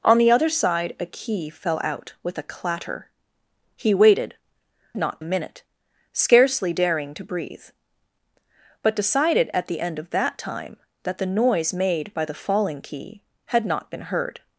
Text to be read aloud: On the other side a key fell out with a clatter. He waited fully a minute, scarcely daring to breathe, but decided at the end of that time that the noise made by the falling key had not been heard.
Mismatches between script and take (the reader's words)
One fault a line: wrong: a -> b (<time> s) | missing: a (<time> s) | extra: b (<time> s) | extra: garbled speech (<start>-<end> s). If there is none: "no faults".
wrong: fully -> not (5.0 s)